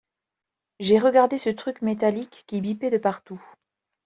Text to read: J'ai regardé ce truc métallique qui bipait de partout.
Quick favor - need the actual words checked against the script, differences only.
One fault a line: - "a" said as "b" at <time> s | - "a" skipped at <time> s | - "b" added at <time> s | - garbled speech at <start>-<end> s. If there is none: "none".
none